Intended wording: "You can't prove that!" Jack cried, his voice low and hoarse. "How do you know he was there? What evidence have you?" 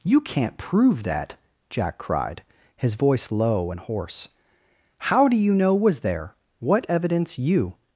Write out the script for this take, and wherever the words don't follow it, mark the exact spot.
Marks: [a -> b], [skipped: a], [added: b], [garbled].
"You can't prove that!" Jack cried, his voice low and hoarse. "How do you know [skipped: he] was there? What evidence [skipped: have] you?"